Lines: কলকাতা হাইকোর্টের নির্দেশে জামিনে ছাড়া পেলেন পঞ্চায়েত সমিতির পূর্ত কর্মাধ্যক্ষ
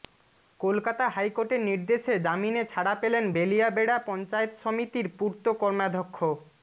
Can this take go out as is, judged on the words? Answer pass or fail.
fail